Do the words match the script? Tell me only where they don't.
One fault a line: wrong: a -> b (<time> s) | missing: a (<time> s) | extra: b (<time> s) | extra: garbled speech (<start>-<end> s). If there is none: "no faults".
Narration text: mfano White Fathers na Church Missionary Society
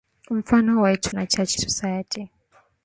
missing: Fathers (1.1 s)
missing: Missionary (1.6 s)